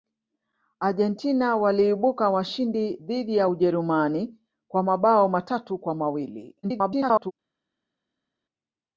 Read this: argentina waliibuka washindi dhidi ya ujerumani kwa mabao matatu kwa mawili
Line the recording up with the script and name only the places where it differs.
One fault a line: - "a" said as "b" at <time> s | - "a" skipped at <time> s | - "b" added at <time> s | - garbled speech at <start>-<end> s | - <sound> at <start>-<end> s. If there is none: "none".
- garbled speech at 6.6-7.3 s